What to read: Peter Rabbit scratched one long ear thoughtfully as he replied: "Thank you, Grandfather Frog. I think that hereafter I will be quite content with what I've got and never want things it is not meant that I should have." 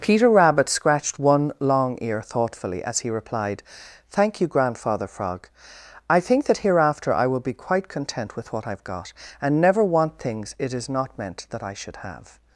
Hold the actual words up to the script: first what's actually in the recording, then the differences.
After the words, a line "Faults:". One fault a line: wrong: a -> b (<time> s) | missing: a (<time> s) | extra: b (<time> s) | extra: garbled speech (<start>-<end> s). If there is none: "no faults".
Peter Rabbit scratched one long ear thoughtfully as he replied: "Thank you, Grandfather Frog. I think that hereafter I will be quite content with what I've got and never want things it is not meant that I should have."
Faults:
no faults